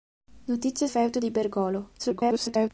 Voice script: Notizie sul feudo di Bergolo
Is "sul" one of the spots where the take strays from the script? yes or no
yes